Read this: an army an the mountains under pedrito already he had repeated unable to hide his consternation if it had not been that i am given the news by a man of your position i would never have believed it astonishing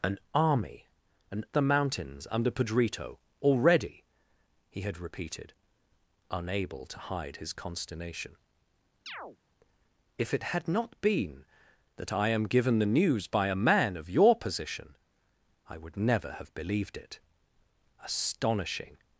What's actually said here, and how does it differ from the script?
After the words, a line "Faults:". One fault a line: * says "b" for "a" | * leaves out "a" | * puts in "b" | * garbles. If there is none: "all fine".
an army an the mountains under pedrito already he had repeated unable to hide his consternation if it had not been that i am given the news by a man of your position i would never have believed it astonishing
Faults:
all fine